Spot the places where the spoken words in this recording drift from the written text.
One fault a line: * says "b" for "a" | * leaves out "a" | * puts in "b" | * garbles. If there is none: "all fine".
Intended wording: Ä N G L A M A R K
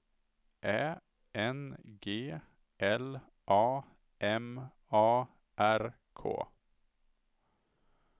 all fine